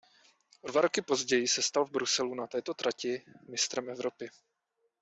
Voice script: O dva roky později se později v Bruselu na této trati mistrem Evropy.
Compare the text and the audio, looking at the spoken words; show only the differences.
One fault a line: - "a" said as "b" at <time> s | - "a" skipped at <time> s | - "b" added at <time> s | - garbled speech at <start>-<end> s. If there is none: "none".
- "později" said as "stal" at 1.6 s